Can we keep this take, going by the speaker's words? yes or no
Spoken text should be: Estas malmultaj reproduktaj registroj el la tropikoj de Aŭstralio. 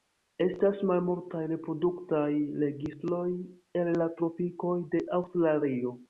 yes